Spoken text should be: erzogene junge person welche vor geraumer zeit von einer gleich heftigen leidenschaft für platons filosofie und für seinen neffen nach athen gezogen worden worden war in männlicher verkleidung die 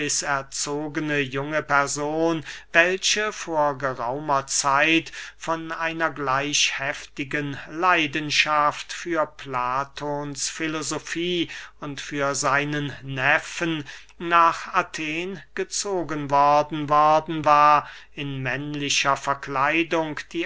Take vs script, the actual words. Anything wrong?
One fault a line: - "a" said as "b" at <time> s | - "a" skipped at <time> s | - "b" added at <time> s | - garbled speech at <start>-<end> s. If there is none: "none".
none